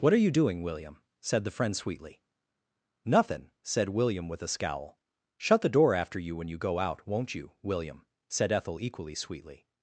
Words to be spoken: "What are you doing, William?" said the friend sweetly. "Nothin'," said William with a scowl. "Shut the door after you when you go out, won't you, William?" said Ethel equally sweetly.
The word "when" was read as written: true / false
true